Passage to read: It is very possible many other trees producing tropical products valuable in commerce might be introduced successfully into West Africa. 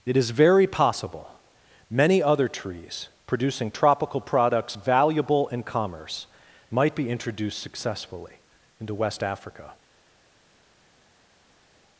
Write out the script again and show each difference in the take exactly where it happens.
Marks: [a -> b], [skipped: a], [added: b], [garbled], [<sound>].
It is very possible many other trees producing tropical products valuable in commerce might be introduced successfully into West Africa.